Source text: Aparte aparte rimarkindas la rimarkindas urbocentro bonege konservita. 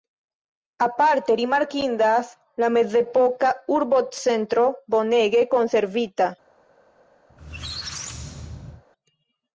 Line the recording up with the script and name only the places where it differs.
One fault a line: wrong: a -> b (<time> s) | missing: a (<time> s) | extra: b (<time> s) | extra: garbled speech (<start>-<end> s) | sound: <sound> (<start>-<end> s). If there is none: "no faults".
missing: aparte (1.4 s)
wrong: rimarkindas -> mezepoka (2.8 s)
sound: squeak (7.3-8.8 s)